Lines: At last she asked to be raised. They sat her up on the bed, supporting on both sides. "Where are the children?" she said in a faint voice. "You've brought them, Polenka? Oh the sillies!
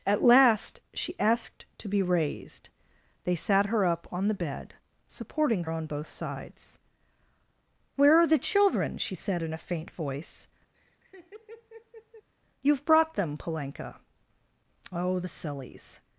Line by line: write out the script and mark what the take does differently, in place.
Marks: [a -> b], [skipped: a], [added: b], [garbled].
At last she asked to be raised. They sat her up on the bed, supporting on both sides. "Where are the children?" she said in a faint voice. "You've brought them, Polenka? Oh the sillies!